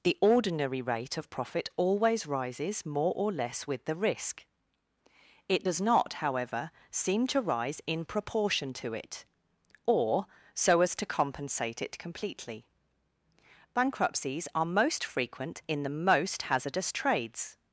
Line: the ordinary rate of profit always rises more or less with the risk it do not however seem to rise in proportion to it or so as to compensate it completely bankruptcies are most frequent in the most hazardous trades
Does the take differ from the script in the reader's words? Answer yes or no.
yes